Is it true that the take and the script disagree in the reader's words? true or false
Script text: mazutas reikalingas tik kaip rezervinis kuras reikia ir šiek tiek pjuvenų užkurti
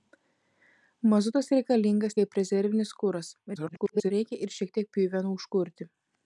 true